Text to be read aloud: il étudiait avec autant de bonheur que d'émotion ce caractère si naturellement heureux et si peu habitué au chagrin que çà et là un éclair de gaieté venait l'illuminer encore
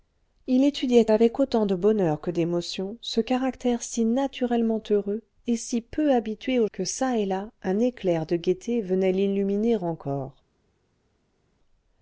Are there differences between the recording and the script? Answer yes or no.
yes